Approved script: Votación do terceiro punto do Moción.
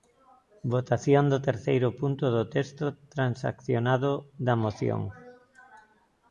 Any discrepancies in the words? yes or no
yes